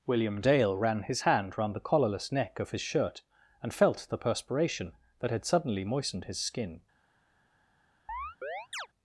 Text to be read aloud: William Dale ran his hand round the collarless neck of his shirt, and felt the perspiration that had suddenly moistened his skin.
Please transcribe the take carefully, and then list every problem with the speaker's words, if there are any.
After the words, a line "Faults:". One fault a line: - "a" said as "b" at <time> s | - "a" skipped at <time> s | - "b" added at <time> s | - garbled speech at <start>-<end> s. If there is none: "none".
William Dale ran his hand round the collarless neck of his shirt, and felt the perspiration that had suddenly moistened his skin.
Faults:
none